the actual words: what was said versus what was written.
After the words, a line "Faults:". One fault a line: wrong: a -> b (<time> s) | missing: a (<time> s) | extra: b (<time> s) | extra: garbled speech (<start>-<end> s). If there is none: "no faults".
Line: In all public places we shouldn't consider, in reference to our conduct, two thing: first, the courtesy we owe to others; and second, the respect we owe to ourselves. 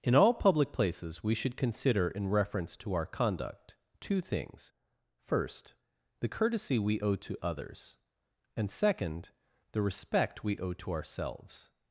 In all public places we should consider, in reference to our conduct, two things: first, the courtesy we owe to others; and second, the respect we owe to ourselves.
Faults:
wrong: shouldn't -> should (1.4 s)
wrong: thing -> things (4.2 s)